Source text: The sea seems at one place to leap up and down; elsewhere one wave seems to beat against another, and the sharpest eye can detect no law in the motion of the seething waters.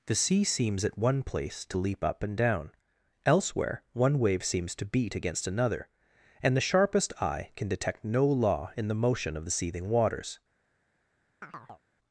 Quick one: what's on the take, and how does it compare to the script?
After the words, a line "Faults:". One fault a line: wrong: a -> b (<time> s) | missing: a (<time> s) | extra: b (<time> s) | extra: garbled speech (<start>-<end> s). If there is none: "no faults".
The sea seems at one place to leap up and down; elsewhere one wave seems to beat against another, and the sharpest eye can detect no law in the motion of the seething waters.
Faults:
no faults